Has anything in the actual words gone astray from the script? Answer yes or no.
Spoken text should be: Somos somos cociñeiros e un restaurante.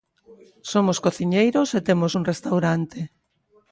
yes